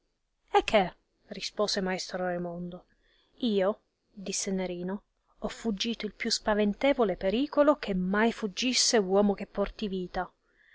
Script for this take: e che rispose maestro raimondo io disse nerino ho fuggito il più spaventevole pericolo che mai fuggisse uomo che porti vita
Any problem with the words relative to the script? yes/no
no